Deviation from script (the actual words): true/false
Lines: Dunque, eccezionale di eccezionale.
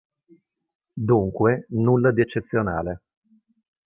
true